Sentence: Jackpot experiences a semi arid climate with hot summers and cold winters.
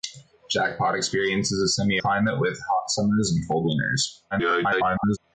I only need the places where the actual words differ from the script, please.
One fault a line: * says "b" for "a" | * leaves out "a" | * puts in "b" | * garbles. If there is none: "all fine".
* leaves out "arid"
* garbles